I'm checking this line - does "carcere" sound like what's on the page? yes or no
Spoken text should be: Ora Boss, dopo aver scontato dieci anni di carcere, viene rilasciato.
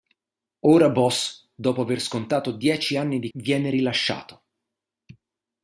no